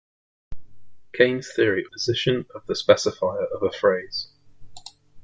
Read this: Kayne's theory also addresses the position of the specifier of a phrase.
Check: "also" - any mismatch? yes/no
yes